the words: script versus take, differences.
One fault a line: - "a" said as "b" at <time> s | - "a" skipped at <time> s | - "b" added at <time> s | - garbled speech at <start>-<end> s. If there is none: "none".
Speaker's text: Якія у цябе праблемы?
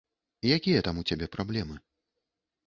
- "там" added at 0.9 s